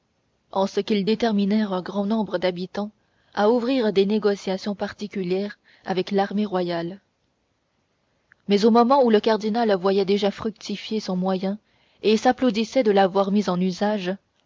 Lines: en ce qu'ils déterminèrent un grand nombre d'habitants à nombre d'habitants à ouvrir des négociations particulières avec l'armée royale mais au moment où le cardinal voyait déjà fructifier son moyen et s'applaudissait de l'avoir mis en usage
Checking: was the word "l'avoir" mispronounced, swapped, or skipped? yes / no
no